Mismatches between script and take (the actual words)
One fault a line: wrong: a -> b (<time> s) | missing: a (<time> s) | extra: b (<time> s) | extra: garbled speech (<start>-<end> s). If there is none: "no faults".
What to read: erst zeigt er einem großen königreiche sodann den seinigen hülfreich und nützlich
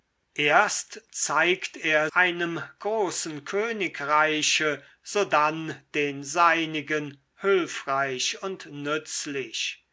no faults